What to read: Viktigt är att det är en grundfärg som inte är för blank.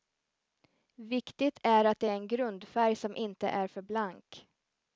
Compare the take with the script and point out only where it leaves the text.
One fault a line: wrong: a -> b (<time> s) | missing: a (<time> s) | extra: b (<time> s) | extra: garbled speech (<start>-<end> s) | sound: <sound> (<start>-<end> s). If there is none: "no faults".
no faults